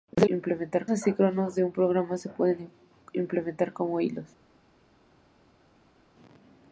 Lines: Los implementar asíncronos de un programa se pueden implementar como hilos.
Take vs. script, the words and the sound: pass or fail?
pass